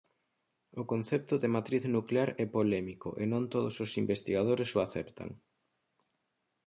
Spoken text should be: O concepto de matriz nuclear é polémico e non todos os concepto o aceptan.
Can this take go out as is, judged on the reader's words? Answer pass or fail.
fail